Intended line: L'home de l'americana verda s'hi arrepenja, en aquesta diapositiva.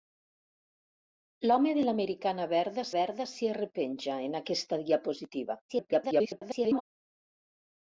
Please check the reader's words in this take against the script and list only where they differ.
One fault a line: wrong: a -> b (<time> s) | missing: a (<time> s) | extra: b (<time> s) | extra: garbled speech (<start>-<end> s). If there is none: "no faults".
extra: verda (3.0 s)
extra: garbled speech (5.7-6.8 s)